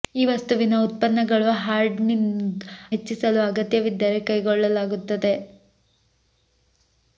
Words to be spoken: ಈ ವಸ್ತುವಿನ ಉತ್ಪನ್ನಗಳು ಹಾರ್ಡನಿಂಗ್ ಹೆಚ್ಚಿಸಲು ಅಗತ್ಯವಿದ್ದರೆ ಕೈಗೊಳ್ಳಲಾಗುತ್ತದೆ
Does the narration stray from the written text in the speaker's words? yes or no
no